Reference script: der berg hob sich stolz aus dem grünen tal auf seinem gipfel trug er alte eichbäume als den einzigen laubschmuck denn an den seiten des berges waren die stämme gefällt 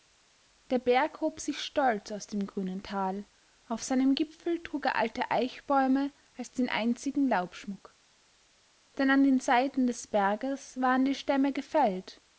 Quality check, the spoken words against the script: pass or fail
pass